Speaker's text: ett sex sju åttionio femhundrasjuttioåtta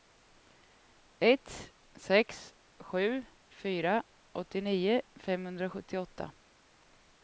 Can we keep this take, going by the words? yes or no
no